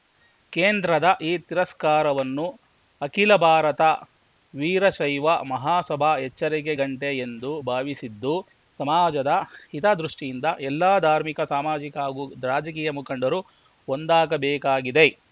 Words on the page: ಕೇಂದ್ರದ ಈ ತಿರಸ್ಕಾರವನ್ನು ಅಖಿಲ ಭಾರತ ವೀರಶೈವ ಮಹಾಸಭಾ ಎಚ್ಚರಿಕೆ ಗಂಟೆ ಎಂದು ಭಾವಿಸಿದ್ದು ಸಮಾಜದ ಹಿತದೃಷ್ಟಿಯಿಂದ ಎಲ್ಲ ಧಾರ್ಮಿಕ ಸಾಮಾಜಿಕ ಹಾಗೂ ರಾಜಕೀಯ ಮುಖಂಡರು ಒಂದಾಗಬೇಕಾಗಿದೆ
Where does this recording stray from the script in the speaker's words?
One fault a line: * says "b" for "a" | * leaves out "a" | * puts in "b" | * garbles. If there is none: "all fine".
all fine